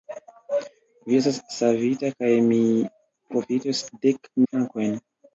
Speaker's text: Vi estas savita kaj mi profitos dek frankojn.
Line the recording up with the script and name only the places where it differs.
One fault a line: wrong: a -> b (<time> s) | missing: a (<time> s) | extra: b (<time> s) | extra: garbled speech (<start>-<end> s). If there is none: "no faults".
no faults